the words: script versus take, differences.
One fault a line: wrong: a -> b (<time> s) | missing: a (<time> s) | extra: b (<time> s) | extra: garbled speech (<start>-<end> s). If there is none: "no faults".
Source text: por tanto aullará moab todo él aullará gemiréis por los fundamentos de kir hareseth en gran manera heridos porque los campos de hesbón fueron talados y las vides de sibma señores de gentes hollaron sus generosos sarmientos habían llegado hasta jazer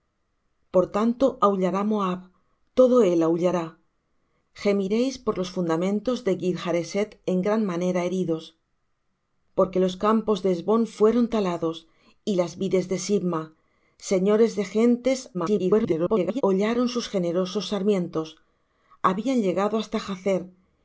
extra: garbled speech (15.3-16.4 s)